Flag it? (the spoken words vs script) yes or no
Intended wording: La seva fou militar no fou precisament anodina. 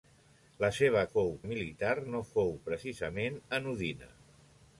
no